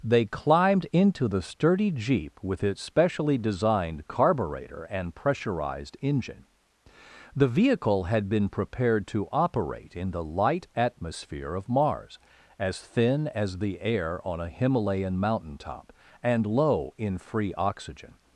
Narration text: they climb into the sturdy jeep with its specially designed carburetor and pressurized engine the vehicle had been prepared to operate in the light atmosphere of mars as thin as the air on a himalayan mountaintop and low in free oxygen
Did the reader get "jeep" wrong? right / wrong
right